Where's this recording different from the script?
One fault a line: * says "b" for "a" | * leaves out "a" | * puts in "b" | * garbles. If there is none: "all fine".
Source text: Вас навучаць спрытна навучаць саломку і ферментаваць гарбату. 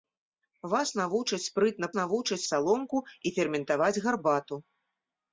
all fine